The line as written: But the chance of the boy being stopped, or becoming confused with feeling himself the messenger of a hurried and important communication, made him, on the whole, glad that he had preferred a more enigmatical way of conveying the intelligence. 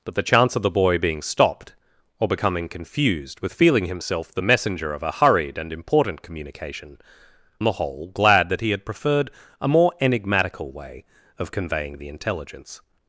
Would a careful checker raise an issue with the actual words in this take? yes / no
yes